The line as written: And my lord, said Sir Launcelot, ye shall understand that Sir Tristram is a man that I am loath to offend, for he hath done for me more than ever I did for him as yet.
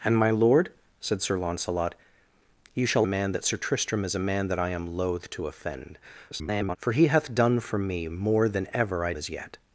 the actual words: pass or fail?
fail